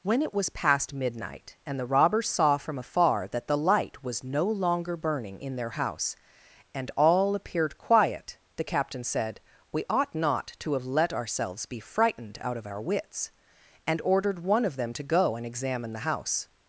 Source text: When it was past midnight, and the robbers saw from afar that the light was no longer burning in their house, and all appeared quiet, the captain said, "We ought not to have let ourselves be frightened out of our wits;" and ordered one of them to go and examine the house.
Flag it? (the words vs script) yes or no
no